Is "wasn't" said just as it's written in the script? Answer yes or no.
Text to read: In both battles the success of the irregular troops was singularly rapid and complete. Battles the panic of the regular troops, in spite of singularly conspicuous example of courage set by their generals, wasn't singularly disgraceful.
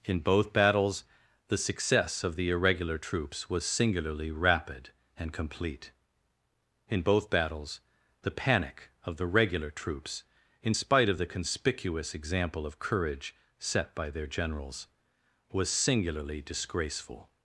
no